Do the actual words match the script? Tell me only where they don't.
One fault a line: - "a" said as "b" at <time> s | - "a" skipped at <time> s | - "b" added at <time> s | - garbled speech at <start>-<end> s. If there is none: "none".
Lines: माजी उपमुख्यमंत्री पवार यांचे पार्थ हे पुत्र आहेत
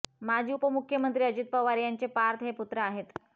- "अजित" added at 1.2 s